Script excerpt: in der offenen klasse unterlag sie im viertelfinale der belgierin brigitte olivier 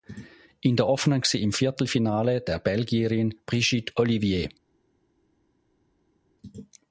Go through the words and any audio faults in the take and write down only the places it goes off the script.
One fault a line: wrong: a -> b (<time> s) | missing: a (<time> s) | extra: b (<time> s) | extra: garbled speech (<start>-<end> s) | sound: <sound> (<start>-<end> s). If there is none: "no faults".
missing: klasse unterlag (1.2 s)